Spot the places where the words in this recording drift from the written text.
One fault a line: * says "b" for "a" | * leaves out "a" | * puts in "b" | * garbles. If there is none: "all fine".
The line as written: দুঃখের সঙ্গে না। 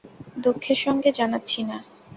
* puts in "জানাচ্ছি"